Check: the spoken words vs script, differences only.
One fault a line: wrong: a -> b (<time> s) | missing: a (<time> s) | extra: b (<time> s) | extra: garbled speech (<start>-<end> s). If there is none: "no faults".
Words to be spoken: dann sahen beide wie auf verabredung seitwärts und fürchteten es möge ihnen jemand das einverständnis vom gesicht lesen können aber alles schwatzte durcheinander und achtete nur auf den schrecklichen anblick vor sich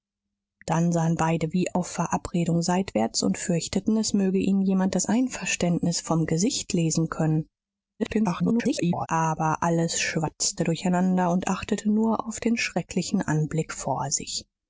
extra: garbled speech (8.0-9.1 s)